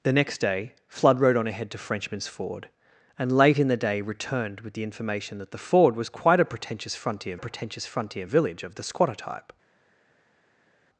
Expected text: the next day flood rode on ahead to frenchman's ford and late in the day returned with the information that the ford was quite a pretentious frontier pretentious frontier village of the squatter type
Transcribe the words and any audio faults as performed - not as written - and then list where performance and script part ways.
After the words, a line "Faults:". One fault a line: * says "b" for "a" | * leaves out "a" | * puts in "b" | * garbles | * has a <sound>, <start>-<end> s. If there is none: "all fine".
the next day flood rode on ahead to frenchman's ford and late in the day returned with the information that the ford was quite a pretentious frontier pretentious frontier village of the squatter type
Faults:
all fine